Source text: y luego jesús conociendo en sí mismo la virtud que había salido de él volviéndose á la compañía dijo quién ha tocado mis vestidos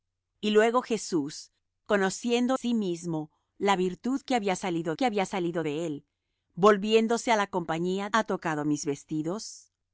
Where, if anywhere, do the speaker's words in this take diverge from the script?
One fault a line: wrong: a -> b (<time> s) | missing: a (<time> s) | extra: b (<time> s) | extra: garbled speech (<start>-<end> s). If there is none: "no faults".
missing: en (2.6 s)
extra: que había salido (4.9 s)
missing: dijo quién (8.1 s)